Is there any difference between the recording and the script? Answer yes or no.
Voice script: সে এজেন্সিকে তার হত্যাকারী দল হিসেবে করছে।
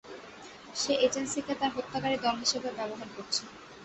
yes